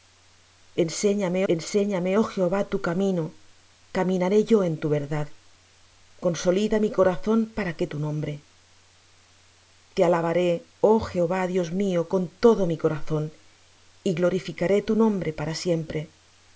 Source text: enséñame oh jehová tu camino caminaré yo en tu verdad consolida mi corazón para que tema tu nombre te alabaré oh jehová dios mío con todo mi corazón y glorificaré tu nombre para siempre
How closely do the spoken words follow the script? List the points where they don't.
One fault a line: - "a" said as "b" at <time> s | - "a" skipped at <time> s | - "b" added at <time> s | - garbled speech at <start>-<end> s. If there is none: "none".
- "enséñame" added at 1.5 s
- "tema" skipped at 7.9 s